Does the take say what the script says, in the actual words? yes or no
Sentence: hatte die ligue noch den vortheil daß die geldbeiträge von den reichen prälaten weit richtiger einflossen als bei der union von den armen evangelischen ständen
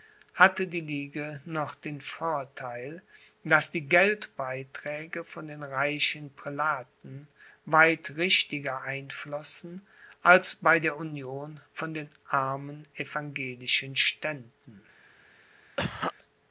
yes